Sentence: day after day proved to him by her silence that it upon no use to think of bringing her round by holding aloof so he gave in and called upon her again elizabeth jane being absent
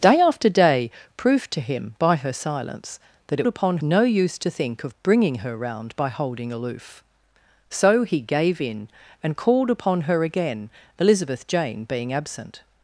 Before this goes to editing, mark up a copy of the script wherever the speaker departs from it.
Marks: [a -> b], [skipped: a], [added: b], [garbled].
day after day proved to him by her silence that it upon no use to think of bringing her round by holding aloof so he gave in and called upon her again elizabeth jane being absent